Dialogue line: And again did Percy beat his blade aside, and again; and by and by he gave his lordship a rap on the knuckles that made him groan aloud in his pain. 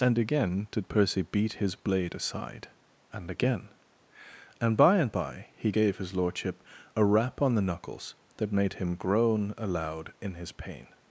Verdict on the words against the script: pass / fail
pass